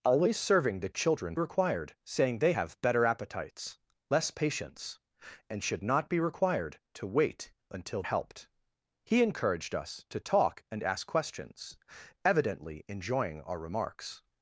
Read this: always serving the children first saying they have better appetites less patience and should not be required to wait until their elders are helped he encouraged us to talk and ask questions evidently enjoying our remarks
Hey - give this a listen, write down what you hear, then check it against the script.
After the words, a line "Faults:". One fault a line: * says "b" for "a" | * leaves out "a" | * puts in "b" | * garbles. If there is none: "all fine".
always serving the children required saying they have better appetites less patience and should not be required to wait until helped he encouraged us to talk and ask questions evidently enjoying our remarks
Faults:
* says "required" for "first"
* leaves out "their elders are"